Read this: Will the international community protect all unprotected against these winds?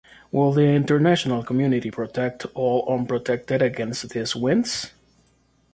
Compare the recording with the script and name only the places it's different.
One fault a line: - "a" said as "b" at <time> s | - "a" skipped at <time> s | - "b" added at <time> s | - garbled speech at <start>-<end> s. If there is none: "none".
none